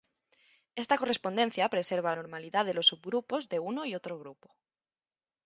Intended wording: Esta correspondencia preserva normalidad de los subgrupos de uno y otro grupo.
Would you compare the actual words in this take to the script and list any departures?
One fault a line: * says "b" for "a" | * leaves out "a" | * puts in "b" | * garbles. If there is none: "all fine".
all fine